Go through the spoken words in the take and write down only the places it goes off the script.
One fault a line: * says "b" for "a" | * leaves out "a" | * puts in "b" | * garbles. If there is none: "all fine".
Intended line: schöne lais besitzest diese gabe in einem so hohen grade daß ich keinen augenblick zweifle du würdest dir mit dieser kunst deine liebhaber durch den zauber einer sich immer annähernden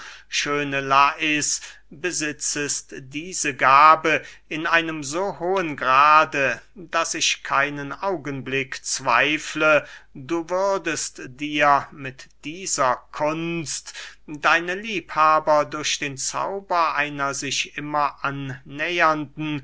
all fine